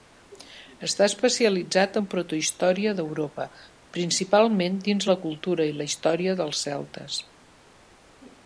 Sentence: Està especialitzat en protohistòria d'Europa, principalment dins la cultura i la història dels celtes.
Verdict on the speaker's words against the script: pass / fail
pass